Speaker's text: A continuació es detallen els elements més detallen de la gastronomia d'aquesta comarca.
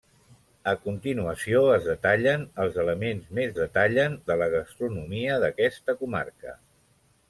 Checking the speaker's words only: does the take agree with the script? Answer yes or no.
yes